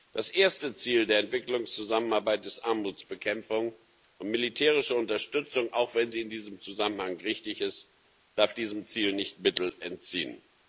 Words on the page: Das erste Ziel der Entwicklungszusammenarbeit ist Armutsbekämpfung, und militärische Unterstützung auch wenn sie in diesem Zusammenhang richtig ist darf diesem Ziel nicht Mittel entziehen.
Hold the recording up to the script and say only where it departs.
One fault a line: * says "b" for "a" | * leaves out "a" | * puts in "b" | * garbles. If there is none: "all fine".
all fine